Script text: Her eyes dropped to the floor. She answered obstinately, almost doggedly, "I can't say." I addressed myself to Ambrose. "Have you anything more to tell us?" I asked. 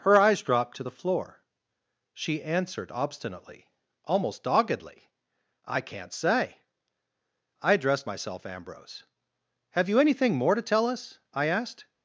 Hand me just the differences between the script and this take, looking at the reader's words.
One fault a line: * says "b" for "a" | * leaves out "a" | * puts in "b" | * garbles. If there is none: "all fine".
* leaves out "to"